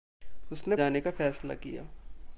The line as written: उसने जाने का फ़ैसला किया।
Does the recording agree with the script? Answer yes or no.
yes